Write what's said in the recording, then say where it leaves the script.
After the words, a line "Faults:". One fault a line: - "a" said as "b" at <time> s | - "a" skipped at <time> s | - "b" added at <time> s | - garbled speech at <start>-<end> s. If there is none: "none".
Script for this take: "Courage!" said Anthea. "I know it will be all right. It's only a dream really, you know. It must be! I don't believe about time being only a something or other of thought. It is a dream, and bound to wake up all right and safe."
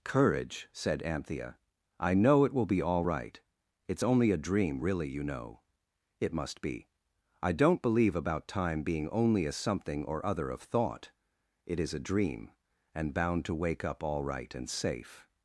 "Courage!" said Anthea. "I know it will be all right. It's only a dream really, you know. It must be! I don't believe about time being only a something or other of thought. It is a dream, and bound to wake up all right and safe."
Faults:
none